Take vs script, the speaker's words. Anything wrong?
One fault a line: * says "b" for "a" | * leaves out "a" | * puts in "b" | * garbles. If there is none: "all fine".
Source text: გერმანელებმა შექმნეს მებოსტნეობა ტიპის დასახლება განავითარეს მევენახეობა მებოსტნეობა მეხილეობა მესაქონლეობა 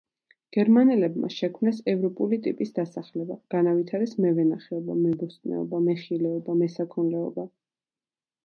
* says "ევროპული" for "მებოსტნეობა"